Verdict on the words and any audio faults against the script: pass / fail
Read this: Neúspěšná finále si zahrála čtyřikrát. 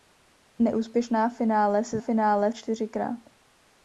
fail